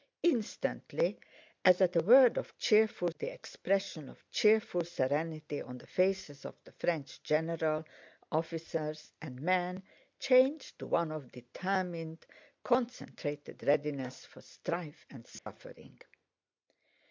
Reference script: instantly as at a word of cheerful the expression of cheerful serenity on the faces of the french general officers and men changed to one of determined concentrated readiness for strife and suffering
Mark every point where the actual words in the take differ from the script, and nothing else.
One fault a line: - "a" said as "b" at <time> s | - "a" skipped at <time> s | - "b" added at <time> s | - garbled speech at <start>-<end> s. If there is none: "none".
none